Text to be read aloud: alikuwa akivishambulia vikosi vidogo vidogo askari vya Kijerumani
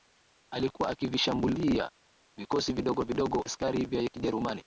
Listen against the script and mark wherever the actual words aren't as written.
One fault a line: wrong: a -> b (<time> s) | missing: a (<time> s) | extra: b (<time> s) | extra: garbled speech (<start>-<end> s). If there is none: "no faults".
no faults